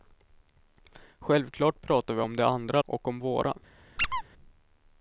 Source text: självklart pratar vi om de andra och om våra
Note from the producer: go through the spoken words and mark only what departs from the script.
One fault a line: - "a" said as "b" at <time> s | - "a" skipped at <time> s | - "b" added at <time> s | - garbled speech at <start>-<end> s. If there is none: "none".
none